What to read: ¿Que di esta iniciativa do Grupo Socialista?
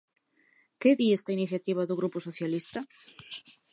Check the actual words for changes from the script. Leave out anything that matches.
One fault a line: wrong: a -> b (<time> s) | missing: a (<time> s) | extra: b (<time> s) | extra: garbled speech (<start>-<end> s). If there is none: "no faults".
no faults